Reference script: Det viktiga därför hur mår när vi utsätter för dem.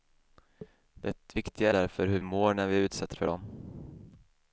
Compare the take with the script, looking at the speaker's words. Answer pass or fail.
pass